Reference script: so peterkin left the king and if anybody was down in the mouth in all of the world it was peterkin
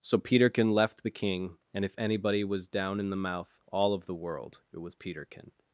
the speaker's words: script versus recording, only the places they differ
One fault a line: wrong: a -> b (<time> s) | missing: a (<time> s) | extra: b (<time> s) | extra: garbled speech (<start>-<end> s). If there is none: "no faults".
missing: in (3.6 s)